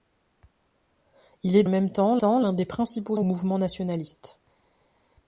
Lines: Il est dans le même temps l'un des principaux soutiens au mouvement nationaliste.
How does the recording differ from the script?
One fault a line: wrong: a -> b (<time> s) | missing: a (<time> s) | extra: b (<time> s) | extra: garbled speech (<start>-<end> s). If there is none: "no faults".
missing: dans (1.6 s)
extra: temps (2.2 s)
missing: soutiens (3.2 s)